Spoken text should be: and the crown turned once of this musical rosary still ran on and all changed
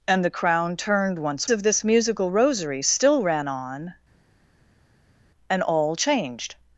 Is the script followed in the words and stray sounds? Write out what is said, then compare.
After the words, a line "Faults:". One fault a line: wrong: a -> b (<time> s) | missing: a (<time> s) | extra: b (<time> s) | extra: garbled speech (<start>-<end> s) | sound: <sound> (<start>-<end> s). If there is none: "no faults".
and the crown turned once of this musical rosary still ran on and all changed
Faults:
no faults